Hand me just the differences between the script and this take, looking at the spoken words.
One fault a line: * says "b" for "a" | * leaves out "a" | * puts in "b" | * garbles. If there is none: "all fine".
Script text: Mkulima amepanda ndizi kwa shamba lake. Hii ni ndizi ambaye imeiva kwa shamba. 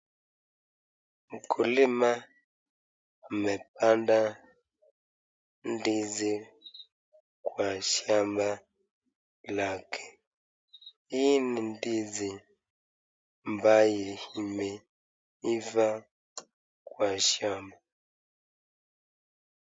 all fine